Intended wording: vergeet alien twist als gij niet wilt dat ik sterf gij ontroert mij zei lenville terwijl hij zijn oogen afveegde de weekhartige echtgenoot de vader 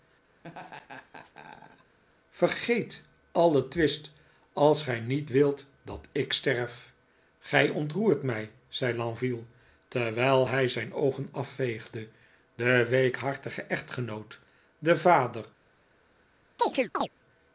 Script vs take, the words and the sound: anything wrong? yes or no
yes